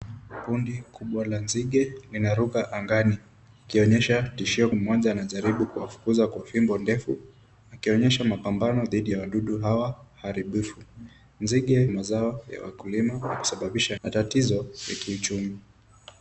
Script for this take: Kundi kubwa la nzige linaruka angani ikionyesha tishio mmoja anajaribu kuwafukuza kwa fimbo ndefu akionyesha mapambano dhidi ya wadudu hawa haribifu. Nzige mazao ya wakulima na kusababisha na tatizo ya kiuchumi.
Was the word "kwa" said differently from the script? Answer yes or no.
no